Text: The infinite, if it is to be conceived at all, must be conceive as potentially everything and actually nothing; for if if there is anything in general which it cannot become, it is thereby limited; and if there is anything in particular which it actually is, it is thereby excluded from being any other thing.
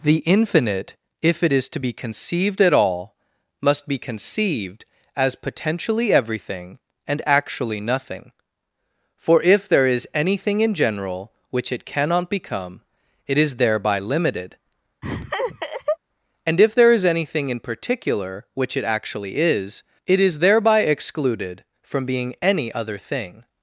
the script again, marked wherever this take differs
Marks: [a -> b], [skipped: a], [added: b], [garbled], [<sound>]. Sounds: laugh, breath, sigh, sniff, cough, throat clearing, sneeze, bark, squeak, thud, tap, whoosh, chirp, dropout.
The infinite, if it is to be conceived at all, must be [conceive -> conceived] as potentially everything and actually nothing; for if [skipped: if] there is anything in general which it cannot become, it is thereby limited; [laugh] and if there is anything in particular which it actually is, it is thereby excluded from being any other thing.